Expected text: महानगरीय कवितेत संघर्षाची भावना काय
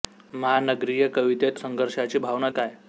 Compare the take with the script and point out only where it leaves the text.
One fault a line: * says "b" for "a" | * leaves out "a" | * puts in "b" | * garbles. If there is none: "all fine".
all fine